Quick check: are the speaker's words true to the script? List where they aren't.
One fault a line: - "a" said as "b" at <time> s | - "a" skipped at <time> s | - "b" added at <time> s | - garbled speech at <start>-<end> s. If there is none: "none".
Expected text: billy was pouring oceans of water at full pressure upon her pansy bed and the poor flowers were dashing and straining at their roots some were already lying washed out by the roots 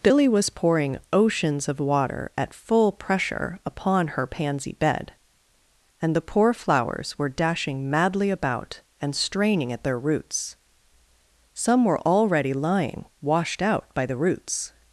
- "madly about" added at 7.9 s